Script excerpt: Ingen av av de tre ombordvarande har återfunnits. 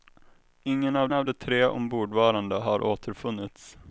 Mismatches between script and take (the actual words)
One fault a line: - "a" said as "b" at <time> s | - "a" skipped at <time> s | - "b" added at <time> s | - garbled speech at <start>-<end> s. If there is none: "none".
none